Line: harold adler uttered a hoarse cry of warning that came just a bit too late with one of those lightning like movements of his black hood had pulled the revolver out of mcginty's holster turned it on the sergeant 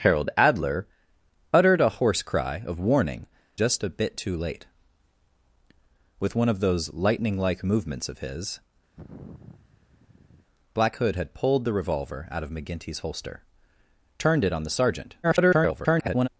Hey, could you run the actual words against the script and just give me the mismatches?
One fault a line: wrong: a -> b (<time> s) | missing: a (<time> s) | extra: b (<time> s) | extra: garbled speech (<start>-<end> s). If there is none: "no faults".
missing: that came (3.3 s)
extra: garbled speech (15.2-16.3 s)